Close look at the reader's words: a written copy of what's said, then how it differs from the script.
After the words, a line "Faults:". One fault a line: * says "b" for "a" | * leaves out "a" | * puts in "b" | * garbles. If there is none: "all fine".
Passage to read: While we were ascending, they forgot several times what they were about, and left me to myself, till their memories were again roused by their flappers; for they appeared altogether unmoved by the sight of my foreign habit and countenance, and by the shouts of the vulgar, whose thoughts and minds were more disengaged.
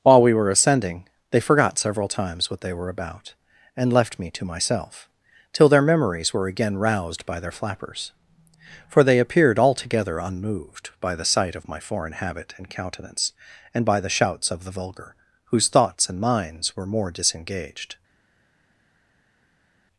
While we were ascending, they forgot several times what they were about, and left me to myself, till their memories were again roused by their flappers; for they appeared altogether unmoved by the sight of my foreign habit and countenance, and by the shouts of the vulgar, whose thoughts and minds were more disengaged.
Faults:
all fine